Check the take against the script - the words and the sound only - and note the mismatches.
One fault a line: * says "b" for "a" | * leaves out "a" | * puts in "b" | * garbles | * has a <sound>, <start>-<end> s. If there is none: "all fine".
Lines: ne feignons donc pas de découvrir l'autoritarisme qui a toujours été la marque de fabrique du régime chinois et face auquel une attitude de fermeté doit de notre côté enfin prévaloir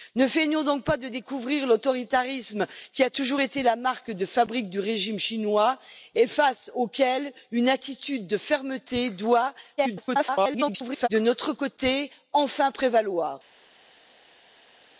* garbles